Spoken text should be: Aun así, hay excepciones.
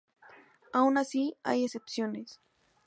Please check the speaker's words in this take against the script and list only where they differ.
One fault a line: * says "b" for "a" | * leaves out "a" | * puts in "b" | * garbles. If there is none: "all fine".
all fine